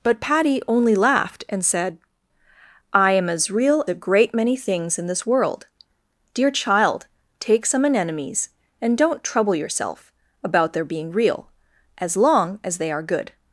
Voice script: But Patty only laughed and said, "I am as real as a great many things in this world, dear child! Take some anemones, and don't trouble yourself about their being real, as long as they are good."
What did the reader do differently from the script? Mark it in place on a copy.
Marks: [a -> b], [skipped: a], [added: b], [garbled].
But Patty only laughed and said, "I am as real [skipped: as] a great many things in this world, dear child! Take some anemones, and don't trouble yourself about their being real, as long as they are good."